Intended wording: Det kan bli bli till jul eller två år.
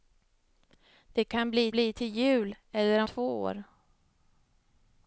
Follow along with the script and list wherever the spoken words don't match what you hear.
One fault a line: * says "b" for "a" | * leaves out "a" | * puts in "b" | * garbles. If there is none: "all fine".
all fine